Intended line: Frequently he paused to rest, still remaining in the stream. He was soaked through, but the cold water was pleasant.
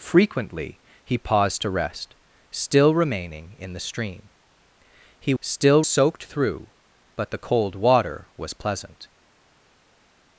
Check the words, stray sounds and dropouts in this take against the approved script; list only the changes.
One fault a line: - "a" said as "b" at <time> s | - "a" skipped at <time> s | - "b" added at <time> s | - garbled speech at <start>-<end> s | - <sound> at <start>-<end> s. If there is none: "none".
- "was" said as "still" at 5.4 s